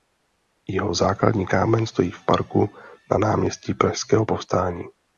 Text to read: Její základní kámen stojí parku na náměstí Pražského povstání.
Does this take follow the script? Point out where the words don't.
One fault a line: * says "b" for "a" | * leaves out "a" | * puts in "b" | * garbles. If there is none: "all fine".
* says "Jeho" for "Její"
* puts in "v"